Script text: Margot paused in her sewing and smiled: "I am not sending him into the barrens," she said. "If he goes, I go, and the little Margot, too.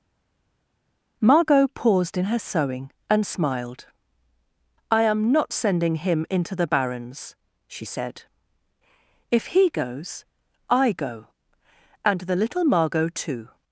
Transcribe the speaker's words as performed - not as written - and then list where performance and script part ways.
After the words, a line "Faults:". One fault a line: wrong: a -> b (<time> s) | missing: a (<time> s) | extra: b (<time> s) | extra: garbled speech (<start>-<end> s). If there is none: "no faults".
Margot paused in her sewing and smiled: "I am not sending him into the barrens," she said. "If he goes, I go, and the little Margot, too.
Faults:
no faults